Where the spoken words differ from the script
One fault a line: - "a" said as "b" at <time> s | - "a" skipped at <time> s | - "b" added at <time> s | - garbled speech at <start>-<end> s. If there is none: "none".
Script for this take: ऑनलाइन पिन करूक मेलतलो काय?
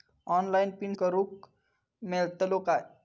none